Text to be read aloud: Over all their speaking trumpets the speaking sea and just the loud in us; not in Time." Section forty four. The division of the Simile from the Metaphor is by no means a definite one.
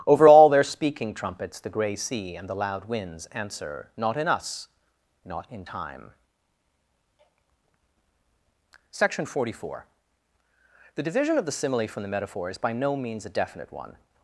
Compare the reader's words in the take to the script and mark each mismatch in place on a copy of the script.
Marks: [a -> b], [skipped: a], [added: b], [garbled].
Over all their speaking trumpets the [speaking -> gray] sea and [skipped: just] the loud [added: winds answer Not] in us; not in Time." Section forty four. The division of the Simile from the Metaphor is by no means a definite one.